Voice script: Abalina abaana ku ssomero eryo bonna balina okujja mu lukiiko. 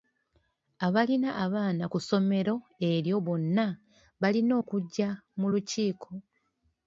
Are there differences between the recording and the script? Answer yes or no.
no